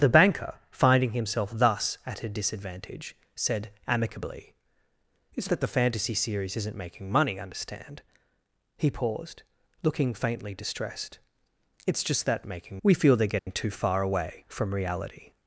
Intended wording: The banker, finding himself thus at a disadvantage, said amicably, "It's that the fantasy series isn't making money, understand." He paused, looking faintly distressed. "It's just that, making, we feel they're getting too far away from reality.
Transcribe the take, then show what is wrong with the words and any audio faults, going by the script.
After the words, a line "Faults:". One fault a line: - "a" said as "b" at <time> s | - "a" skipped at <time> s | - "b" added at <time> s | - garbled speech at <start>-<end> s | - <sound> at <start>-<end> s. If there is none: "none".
The banker, finding himself thus at a disadvantage, said amicably, "It's that the fantasy series isn't making money, understand." He paused, looking faintly distressed. "It's just that, making, we feel they're getting too far away from reality.
Faults:
- dropout at 13.4-13.5 s